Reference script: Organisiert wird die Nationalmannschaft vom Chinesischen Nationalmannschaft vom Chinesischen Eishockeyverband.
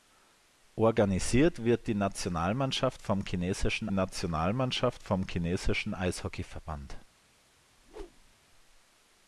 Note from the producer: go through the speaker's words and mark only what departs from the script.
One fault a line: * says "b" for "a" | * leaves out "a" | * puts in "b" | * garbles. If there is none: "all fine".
all fine